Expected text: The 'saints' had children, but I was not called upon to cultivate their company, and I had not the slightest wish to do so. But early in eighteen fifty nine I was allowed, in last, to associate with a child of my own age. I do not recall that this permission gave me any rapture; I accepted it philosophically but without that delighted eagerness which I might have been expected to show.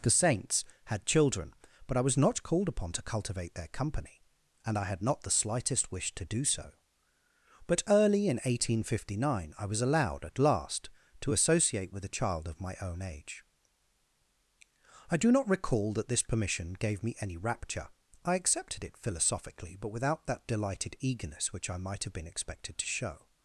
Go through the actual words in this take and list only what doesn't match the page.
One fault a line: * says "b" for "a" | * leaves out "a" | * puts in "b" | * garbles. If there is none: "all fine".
* says "at" for "in"